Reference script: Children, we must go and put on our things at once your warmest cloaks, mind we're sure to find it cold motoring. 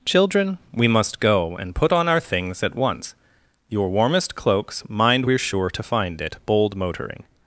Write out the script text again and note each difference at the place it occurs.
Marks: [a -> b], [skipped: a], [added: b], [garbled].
Children, we must go and put on our things at once your warmest cloaks, mind we're sure to find it [cold -> bold] motoring.